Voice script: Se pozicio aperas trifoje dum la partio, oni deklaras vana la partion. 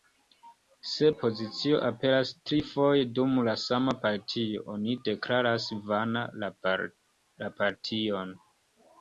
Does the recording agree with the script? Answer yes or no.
no